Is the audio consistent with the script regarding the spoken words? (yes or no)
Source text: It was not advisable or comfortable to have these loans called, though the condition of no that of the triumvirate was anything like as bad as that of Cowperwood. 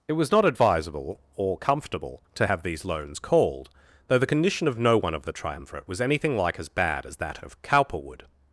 no